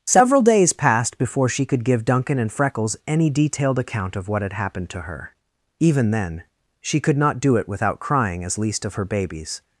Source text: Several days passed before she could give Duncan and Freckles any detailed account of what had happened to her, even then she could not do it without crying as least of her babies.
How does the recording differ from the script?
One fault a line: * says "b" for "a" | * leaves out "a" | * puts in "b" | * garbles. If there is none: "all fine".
all fine